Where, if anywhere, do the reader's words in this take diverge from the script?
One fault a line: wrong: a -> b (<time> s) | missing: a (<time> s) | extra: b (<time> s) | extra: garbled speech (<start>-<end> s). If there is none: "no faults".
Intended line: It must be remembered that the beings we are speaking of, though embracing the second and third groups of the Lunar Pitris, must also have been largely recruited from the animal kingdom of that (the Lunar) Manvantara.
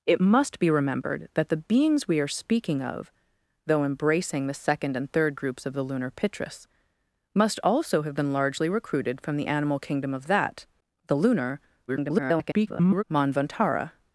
extra: garbled speech (11.9-13.0 s)